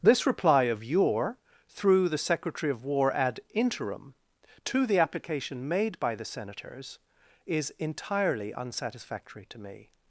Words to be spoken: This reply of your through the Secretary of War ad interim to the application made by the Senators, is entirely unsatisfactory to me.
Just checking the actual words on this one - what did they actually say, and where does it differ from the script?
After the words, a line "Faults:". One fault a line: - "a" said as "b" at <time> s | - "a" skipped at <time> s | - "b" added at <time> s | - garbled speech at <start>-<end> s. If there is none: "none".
This reply of your through the Secretary of War ad interim to the application made by the Senators, is entirely unsatisfactory to me.
Faults:
none